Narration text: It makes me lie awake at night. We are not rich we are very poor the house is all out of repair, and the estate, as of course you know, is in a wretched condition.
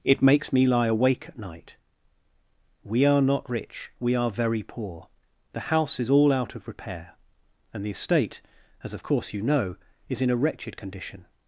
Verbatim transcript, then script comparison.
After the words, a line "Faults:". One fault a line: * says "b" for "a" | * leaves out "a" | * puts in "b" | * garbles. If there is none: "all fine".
It makes me lie awake at night. We are not rich we are very poor the house is all out of repair, and the estate, as of course you know, is in a wretched condition.
Faults:
all fine